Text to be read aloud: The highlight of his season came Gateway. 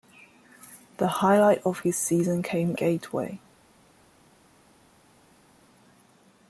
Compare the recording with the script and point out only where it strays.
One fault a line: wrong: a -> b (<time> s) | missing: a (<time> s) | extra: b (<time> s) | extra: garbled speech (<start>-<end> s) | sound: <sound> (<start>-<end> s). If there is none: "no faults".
no faults